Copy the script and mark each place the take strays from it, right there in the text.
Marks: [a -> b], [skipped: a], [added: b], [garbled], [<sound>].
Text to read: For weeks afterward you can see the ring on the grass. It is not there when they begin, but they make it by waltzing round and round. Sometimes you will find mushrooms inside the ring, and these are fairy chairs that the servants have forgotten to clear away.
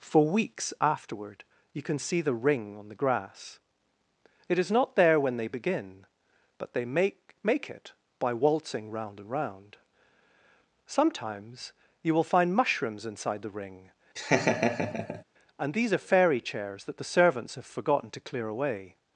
For weeks afterward you can see the ring on the grass. It is not there when they begin, but they make [added: make] it by waltzing round and round. Sometimes you will find mushrooms inside the ring, [laugh] and these are fairy chairs that the servants have forgotten to clear away.